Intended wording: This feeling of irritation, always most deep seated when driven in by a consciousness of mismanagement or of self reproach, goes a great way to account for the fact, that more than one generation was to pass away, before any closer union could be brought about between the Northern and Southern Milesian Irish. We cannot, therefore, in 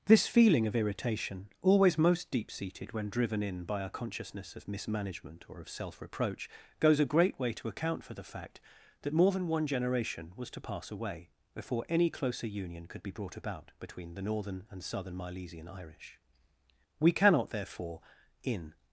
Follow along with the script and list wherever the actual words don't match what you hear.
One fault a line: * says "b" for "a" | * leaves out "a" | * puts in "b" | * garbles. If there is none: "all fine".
all fine